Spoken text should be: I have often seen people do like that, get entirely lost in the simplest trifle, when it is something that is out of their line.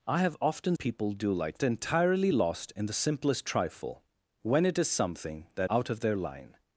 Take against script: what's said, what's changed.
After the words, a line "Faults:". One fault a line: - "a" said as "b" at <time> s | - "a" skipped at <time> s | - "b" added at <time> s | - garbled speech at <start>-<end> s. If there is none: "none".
I have often people do like entirely lost in the simplest trifle, when it is something that out of their line.
Faults:
- "seen" skipped at 0.8 s
- "that get" skipped at 1.6 s
- "is" skipped at 5.7 s